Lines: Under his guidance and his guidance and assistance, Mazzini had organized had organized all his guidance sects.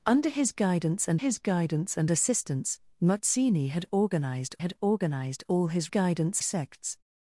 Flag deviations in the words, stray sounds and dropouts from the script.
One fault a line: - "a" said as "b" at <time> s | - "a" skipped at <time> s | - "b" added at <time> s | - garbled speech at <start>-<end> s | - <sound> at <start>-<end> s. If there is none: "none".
none